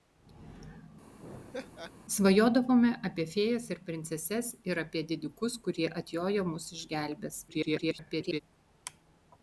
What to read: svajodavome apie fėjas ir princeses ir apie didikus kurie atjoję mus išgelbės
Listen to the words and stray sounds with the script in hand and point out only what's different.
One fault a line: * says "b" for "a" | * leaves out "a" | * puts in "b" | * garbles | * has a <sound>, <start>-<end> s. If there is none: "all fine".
* has a laugh, 1.2-1.9 s
* garbles